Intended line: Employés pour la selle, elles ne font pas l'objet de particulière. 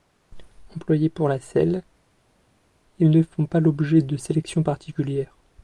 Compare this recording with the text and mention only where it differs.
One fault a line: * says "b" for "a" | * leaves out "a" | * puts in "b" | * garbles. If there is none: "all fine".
* says "ils" for "elles"
* puts in "sélection"